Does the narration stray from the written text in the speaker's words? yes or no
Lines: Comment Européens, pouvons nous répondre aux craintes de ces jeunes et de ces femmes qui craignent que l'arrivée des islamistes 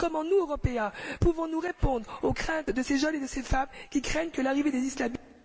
yes